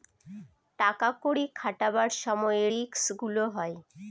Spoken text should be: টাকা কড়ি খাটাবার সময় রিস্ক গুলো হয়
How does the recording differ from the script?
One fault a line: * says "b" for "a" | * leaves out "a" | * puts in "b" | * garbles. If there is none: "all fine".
all fine